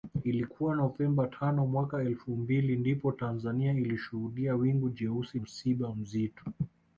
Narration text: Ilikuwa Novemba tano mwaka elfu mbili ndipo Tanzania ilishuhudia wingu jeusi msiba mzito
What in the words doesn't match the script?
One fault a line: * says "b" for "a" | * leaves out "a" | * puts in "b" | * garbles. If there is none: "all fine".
all fine